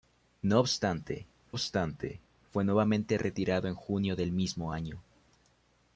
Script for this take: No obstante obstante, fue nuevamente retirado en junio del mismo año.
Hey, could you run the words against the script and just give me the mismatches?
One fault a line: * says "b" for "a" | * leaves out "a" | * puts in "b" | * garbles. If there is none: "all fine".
all fine